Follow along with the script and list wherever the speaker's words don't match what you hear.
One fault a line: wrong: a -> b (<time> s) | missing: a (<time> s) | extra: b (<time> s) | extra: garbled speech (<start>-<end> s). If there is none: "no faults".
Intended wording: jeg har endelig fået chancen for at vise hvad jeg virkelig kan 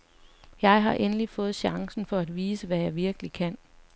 no faults